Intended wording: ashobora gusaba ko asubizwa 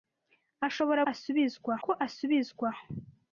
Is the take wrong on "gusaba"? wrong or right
wrong